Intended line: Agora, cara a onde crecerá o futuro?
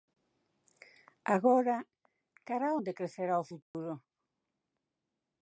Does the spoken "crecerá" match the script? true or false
true